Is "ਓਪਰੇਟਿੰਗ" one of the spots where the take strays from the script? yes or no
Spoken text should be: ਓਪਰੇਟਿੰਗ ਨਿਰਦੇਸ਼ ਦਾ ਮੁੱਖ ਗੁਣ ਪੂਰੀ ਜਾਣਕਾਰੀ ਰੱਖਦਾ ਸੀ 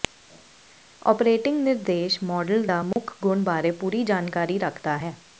no